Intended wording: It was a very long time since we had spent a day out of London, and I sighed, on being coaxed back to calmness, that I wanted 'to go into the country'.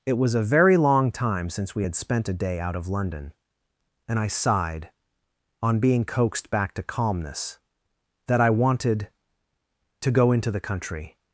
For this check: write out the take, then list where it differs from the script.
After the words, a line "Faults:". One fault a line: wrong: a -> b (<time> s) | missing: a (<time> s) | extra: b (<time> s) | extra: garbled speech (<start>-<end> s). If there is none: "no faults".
It was a very long time since we had spent a day out of London, and I sighed, on being coaxed back to calmness, that I wanted 'to go into the country'.
Faults:
no faults